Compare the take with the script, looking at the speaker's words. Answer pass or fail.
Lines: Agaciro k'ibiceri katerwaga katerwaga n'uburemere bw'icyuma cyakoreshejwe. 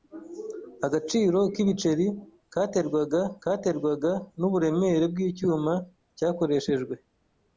pass